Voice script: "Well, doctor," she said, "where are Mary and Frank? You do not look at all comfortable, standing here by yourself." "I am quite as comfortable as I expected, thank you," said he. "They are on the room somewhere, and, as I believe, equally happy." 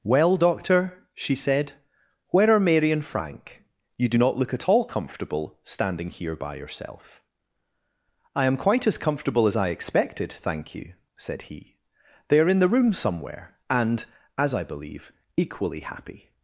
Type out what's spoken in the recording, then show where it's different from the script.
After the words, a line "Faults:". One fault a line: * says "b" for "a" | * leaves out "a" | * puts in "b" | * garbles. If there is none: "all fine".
"Well, doctor," she said, "where are Mary and Frank? You do not look at all comfortable, standing here by yourself." "I am quite as comfortable as I expected, thank you," said he. "They are in the room somewhere, and, as I believe, equally happy."
Faults:
* says "in" for "on"